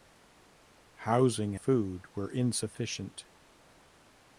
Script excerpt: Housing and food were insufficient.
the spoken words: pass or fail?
fail